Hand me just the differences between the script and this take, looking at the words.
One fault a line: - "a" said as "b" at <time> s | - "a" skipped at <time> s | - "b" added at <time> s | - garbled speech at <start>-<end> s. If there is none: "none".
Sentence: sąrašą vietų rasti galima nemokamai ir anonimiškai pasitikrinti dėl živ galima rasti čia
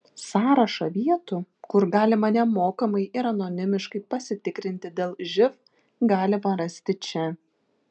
- "rasti" said as "kur" at 1.7 s